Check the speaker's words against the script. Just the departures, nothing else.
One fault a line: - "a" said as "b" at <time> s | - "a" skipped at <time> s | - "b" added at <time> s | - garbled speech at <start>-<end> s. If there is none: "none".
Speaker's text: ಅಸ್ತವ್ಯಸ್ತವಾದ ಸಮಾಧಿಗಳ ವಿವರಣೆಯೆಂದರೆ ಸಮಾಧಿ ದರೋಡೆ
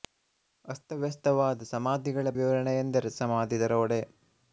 none